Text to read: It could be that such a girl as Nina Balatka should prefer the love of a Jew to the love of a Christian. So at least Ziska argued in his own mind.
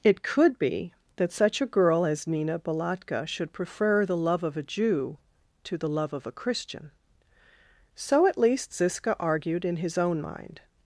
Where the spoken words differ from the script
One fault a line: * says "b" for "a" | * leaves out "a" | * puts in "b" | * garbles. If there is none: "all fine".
all fine